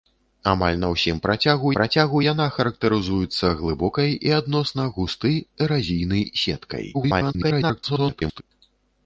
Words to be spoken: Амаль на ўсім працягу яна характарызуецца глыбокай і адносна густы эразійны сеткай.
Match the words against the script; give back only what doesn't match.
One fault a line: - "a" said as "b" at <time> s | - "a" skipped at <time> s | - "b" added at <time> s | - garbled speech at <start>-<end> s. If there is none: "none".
- "працягу" added at 1.8 s
- garbled speech at 6.9-8.4 s